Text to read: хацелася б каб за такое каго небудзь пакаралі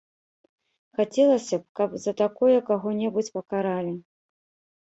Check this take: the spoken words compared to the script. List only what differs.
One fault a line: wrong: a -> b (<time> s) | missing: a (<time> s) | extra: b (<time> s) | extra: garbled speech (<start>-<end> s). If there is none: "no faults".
no faults